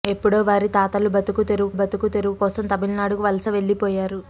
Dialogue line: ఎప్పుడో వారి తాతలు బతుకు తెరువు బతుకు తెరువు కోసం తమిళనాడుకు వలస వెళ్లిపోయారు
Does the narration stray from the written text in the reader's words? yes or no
no